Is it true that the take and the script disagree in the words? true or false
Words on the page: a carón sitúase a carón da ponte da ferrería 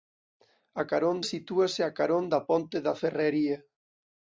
false